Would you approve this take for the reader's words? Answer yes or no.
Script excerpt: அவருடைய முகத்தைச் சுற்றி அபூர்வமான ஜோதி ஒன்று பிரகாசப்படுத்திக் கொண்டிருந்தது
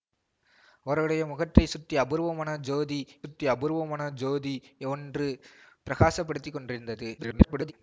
no